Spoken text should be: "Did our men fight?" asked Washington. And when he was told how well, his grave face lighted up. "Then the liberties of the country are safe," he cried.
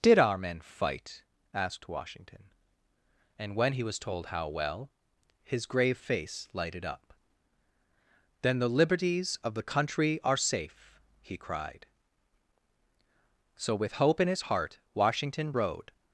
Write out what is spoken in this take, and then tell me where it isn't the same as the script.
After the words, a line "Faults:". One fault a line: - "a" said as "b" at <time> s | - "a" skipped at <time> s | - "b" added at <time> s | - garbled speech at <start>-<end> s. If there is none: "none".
"Did our men fight?" asked Washington. And when he was told how well, his grave face lighted up. "Then the liberties of the country are safe," he cried. So with hope in his heart Washington rode
Faults:
- "So with hope in his heart Washington rode" added at 13.6 s